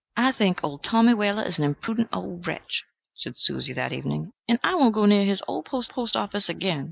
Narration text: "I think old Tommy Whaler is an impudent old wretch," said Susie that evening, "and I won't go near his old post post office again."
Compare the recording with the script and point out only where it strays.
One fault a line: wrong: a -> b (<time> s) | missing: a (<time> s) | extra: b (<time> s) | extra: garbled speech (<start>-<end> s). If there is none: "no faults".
no faults